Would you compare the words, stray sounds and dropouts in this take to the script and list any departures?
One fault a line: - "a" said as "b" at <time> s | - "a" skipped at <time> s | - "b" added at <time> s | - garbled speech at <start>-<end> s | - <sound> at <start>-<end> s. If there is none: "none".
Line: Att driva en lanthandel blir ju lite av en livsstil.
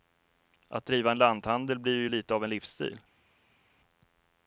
none